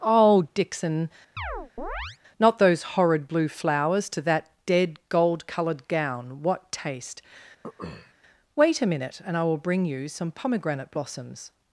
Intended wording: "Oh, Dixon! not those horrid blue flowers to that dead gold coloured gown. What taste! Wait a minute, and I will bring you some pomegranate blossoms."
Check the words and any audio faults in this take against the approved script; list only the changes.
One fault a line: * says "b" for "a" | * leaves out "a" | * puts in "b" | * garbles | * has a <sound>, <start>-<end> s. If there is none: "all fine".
* has a chirp, 1.4-2.2 s
* has a throat clearing, 7.6-8.1 s